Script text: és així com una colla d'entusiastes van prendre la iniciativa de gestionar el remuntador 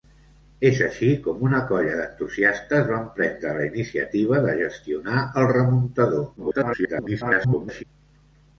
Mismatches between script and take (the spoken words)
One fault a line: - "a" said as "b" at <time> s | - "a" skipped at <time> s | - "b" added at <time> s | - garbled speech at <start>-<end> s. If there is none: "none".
- garbled speech at 6.4-7.8 s